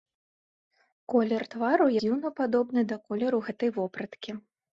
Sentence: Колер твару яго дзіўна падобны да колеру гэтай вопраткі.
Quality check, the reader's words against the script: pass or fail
fail